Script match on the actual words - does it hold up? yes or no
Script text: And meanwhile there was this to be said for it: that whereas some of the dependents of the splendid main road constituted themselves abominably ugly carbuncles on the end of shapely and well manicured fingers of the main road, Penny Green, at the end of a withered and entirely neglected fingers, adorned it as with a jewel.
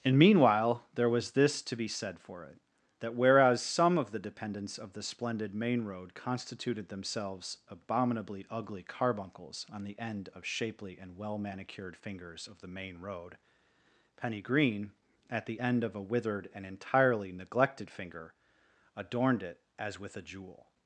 no